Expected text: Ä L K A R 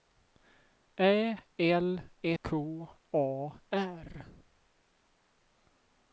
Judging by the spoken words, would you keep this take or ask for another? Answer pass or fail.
pass